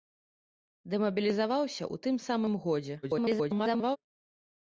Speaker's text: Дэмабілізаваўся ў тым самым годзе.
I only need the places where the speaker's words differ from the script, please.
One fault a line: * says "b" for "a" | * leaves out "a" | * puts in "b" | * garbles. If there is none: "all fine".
* garbles